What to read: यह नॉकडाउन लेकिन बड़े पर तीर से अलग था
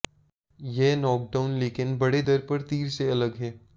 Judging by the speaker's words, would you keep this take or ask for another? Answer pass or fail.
fail